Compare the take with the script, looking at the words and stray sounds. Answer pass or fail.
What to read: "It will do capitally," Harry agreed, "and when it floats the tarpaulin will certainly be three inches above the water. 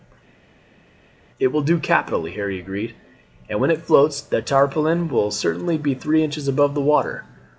pass